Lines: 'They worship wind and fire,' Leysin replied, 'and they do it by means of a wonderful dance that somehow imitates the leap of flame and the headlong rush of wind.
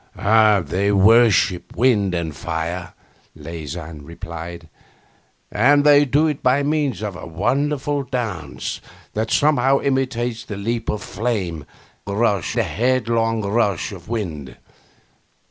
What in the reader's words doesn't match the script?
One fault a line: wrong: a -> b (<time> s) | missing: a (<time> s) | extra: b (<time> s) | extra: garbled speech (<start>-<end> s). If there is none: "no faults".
wrong: and -> rush (12.1 s)